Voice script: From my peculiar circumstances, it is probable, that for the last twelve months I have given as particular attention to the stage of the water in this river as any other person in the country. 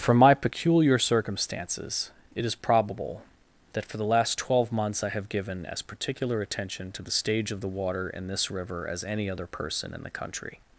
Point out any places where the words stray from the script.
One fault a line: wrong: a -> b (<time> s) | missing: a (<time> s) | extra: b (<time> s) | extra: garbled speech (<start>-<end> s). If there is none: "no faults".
no faults